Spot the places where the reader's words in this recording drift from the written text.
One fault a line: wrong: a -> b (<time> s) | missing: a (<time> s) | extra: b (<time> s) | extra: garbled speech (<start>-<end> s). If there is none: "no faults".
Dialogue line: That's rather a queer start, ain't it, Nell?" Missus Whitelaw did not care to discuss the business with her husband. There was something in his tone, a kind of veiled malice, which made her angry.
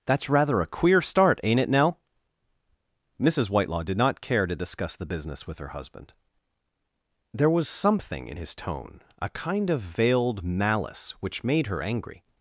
no faults